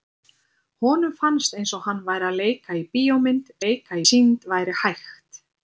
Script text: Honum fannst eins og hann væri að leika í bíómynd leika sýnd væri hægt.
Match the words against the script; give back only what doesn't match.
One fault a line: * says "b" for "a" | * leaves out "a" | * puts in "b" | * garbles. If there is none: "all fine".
all fine